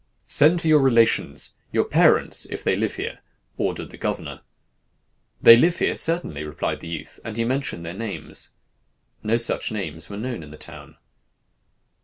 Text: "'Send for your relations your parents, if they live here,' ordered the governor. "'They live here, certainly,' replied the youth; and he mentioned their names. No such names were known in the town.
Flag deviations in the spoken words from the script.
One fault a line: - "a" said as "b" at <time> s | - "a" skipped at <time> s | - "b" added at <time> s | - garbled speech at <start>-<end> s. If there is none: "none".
none